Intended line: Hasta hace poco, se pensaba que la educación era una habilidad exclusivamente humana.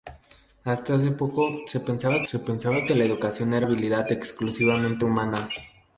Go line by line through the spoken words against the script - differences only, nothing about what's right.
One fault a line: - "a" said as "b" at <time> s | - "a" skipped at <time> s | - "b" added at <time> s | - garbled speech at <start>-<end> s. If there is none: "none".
- "se pensaba" added at 2.3 s
- "una" skipped at 3.7 s